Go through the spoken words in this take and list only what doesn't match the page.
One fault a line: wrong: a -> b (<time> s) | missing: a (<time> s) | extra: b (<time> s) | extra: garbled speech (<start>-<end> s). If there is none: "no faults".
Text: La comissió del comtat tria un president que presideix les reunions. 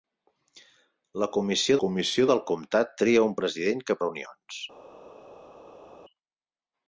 extra: comissió (1.8 s)
missing: presideix les (4.0 s)